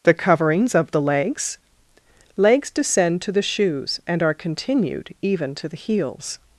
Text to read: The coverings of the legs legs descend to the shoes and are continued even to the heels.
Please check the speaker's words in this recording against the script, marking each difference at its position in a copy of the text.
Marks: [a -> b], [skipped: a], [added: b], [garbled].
The coverings of the legs legs descend to the shoes and are continued even to the heels.